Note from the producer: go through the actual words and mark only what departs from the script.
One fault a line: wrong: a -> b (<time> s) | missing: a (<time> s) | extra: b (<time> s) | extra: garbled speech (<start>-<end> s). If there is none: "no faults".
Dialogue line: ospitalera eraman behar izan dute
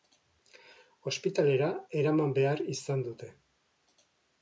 no faults